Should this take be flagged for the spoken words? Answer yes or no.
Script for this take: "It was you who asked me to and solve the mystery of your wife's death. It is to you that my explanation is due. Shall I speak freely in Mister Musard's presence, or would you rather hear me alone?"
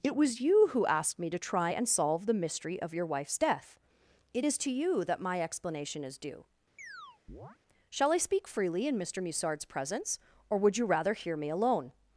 yes